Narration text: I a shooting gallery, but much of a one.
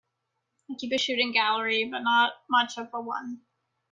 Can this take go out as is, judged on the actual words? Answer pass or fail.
fail